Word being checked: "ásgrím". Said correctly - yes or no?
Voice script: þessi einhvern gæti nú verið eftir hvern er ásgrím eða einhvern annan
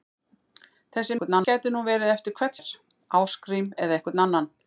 yes